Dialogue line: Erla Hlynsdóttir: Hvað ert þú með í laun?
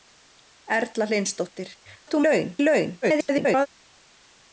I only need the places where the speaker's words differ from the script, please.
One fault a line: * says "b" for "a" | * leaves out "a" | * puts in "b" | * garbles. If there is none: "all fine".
* leaves out "Hvað"
* says "laun" for "með"
* garbles